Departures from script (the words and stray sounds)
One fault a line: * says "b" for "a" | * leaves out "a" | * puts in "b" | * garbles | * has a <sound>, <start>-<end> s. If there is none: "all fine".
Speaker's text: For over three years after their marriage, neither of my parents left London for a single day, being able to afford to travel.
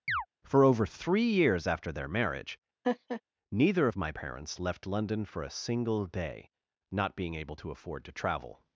* has a chirp, 0.1-0.3 s
* has a laugh, 2.8-3.2 s
* puts in "not"